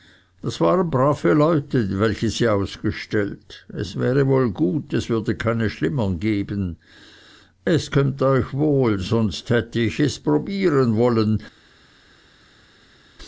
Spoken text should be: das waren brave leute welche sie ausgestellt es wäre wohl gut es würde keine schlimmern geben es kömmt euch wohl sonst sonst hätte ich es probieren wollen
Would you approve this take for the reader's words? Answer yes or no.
no